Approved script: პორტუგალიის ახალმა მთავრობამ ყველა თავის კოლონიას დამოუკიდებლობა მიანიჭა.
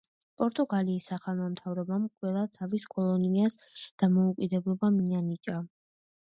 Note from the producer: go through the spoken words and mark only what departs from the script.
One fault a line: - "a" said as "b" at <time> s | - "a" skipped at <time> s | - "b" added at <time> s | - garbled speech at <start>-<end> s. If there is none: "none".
none